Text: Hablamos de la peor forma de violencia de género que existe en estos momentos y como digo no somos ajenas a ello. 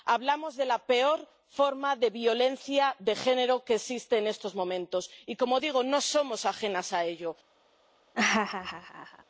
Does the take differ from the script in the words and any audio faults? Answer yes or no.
yes